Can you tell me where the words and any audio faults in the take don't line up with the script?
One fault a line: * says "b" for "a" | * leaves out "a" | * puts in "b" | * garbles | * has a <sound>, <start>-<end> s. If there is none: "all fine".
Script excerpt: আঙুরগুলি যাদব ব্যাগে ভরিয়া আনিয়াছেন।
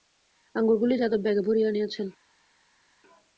all fine